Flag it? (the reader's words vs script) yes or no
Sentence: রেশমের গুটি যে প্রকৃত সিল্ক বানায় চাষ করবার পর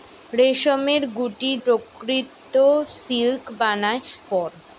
yes